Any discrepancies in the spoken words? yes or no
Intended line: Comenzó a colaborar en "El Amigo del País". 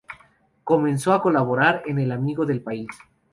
no